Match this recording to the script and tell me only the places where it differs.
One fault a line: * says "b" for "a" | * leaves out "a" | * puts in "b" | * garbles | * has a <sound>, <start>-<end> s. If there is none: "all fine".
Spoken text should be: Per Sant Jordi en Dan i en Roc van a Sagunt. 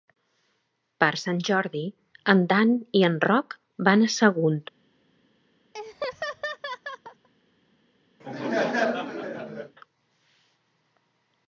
* has a laugh, 5.7-7.3 s
* has a laugh, 8.2-9.8 s